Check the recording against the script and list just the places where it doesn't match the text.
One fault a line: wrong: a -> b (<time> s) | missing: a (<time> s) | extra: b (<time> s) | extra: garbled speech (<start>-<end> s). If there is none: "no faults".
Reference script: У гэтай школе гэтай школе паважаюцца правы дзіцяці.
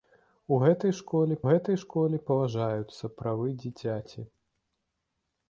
no faults